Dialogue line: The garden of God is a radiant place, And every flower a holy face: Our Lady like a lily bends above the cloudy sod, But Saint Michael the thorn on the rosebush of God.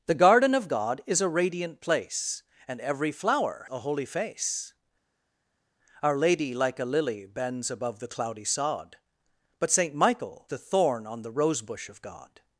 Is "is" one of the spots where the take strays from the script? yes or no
no